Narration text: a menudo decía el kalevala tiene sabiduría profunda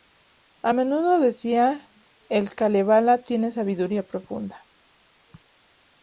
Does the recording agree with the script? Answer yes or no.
yes